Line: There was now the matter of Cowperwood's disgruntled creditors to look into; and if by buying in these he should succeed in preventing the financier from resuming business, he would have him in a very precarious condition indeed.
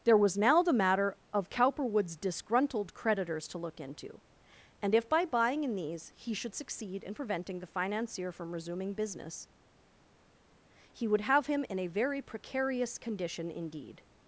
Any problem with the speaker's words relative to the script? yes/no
no